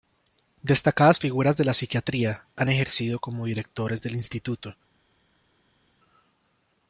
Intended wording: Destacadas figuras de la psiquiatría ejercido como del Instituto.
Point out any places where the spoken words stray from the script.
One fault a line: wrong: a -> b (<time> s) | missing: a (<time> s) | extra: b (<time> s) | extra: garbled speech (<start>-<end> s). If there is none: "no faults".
extra: han (2.6 s)
extra: directores (3.5 s)